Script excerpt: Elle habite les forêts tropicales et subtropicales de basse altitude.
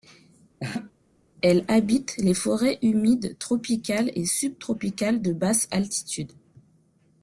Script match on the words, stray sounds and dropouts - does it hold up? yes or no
no